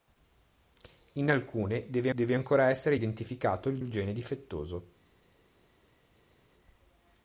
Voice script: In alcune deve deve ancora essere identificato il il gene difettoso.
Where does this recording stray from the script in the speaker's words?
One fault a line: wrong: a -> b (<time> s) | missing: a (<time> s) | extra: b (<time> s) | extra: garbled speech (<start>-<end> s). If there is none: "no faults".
no faults